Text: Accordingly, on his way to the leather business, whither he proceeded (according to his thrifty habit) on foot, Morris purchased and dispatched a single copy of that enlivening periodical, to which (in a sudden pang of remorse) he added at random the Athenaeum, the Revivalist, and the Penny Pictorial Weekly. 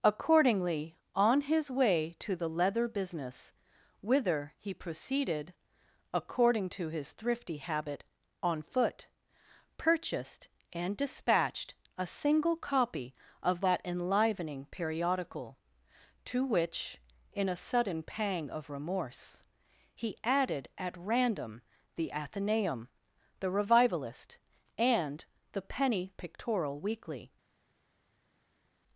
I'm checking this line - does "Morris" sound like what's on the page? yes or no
no